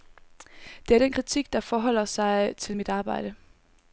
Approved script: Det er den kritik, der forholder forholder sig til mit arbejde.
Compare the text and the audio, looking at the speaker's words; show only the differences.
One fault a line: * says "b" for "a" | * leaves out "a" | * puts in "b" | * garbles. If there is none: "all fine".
* leaves out "forholder"